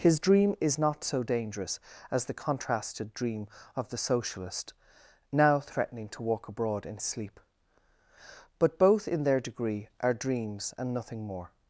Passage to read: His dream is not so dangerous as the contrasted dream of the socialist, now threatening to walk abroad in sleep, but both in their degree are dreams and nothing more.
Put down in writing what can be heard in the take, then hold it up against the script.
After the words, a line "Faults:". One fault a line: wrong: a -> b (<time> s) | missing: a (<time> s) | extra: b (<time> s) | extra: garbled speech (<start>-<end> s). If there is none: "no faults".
His dream is not so dangerous as the contrasted dream of the socialist, now threatening to walk abroad in sleep, but both in their degree are dreams and nothing more.
Faults:
no faults